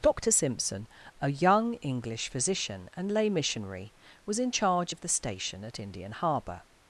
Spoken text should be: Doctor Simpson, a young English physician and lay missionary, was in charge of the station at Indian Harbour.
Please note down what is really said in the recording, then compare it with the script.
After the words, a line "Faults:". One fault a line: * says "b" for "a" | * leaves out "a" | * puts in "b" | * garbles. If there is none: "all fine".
Doctor Simpson, a young English physician and lay missionary, was in charge of the station at Indian Harbour.
Faults:
all fine